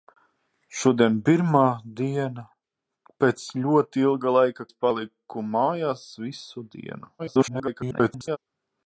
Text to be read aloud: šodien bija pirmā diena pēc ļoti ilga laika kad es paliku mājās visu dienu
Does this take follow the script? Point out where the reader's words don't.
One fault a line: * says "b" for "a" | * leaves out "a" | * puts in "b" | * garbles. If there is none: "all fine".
* leaves out "bija"
* leaves out "kad"
* garbles